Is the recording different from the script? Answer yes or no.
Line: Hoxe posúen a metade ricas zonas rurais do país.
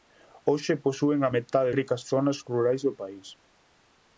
no